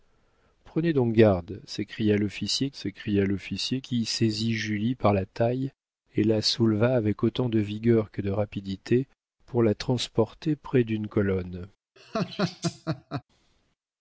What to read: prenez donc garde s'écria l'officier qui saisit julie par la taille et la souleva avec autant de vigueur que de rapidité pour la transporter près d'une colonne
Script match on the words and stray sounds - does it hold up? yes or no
no